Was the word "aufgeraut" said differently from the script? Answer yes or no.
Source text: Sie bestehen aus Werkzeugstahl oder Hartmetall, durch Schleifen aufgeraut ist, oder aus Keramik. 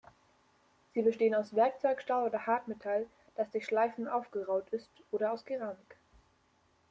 no